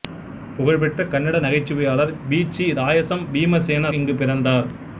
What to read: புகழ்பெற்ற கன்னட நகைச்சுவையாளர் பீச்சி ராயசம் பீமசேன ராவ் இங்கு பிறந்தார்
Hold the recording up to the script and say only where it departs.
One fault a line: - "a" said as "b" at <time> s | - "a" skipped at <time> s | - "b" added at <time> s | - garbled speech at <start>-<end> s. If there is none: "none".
- "ராவ்" skipped at 3.9 s